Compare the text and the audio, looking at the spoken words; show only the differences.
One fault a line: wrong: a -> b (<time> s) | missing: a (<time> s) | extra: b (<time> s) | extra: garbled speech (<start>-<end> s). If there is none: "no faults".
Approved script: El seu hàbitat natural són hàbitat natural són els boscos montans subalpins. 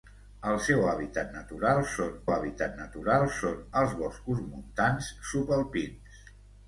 no faults